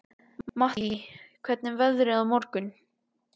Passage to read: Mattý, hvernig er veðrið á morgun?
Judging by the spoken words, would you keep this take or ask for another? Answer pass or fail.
pass